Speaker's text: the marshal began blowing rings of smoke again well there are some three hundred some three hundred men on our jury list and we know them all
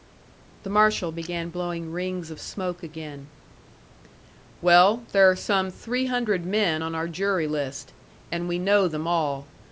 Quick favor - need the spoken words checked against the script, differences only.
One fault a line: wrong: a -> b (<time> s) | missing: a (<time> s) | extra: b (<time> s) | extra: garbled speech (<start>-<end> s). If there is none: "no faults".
missing: some three hundred (6.4 s)